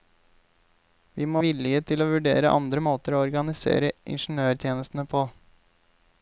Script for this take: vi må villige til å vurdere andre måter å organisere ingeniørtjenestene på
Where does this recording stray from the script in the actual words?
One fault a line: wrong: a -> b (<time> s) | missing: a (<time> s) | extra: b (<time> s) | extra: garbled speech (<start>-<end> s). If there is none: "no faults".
no faults